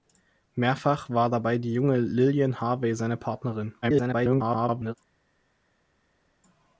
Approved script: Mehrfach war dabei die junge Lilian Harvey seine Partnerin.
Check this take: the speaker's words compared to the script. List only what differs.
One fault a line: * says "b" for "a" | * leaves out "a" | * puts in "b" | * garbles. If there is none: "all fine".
* garbles